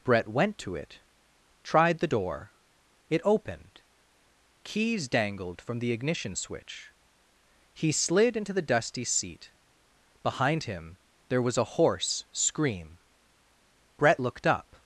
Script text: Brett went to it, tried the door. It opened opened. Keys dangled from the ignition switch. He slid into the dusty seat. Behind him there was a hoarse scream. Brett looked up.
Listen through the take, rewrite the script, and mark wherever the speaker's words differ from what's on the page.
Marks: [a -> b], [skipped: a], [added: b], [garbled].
Brett went to it, tried the door. It opened [skipped: opened.] Keys dangled from the ignition switch. He slid into the dusty seat. Behind him there was a hoarse scream. Brett looked up.